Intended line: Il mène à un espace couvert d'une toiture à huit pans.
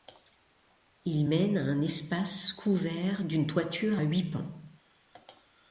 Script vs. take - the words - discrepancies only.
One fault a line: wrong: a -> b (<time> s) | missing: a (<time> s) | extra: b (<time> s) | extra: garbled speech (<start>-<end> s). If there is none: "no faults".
no faults